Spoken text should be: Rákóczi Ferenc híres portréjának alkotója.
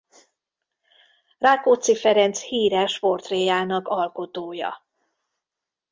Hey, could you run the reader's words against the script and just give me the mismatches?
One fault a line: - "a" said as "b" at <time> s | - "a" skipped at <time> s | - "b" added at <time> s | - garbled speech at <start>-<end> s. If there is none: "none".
none